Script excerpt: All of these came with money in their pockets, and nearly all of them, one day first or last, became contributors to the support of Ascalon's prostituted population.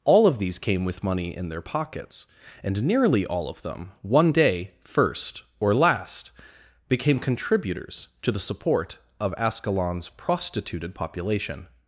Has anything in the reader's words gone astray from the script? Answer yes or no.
no